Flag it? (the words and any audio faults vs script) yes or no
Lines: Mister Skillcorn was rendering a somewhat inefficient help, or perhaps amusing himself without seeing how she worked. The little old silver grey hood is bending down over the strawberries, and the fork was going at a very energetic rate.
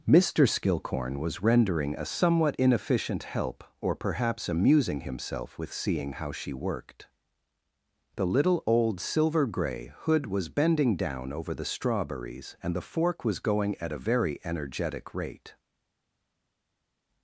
yes